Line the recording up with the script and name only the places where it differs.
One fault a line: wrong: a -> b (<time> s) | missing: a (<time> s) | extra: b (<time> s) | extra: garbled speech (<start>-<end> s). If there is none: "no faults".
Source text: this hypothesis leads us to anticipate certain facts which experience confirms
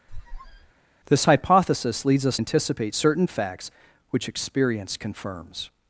missing: to (2.4 s)